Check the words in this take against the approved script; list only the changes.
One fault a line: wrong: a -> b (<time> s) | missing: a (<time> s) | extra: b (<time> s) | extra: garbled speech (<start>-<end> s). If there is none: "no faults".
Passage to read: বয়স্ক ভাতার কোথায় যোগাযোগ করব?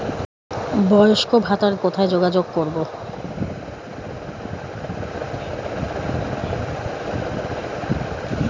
no faults